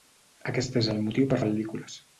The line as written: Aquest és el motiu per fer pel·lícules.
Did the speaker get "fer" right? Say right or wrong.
wrong